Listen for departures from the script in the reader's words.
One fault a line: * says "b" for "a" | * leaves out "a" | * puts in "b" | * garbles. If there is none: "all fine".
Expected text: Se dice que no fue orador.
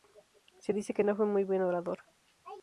* puts in "muy buen"